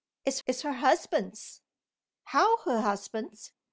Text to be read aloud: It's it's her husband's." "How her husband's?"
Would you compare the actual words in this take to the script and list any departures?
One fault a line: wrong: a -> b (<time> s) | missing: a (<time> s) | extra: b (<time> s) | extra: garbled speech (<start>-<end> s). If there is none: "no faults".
no faults